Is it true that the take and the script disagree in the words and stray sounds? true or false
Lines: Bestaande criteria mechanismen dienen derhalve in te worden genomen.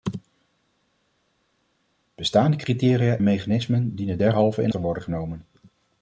false